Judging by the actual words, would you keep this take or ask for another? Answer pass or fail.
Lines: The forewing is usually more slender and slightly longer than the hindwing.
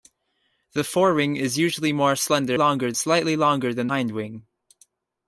fail